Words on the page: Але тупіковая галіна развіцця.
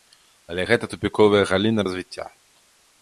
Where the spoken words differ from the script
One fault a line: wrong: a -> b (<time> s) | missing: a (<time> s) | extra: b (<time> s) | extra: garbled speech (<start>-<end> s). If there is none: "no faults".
extra: гэта (0.7 s)